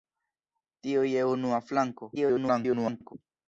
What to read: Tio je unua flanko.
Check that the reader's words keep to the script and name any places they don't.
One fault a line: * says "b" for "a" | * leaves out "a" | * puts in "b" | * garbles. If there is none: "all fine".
* garbles